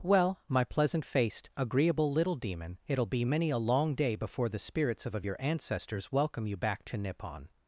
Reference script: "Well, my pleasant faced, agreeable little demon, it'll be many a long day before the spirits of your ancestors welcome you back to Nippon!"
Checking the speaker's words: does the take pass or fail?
fail